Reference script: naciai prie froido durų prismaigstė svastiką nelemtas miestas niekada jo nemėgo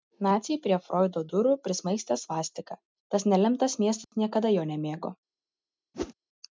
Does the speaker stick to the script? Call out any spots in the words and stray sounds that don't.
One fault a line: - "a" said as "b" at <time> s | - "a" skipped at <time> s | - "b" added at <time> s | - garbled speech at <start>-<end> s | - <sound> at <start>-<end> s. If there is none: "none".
- "tas" added at 3.2 s
- dropout at 4.0-4.1 s
- whoosh at 5.9-6.1 s